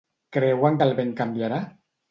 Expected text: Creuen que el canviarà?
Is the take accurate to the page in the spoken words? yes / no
no